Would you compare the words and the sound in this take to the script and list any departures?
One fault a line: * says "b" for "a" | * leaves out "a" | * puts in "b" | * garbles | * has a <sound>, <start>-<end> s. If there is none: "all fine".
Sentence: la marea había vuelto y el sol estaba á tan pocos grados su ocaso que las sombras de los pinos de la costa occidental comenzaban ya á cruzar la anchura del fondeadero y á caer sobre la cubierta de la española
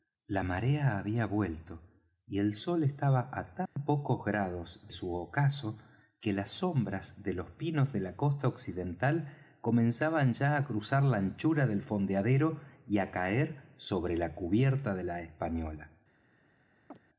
* has a dropout, 3.7-3.8 s
* has a chirp, 16.9-17.0 s